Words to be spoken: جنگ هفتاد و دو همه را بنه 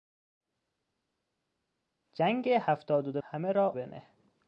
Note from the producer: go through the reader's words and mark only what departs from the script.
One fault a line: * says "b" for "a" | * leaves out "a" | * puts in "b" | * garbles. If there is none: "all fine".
all fine